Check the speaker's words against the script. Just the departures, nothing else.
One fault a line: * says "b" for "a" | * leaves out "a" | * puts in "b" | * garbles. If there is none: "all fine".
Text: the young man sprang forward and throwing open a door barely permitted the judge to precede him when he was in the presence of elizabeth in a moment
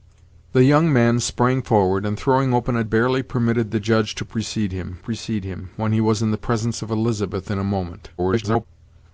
* leaves out "door"
* puts in "precede him"
* garbles